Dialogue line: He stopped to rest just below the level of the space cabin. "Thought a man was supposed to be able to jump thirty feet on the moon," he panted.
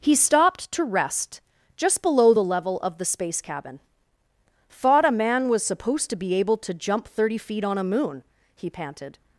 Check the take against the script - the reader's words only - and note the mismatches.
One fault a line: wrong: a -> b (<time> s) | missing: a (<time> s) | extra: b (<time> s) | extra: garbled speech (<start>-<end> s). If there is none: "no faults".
wrong: the -> a (7.8 s)